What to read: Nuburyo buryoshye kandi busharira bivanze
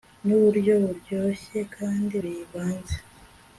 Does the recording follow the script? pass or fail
fail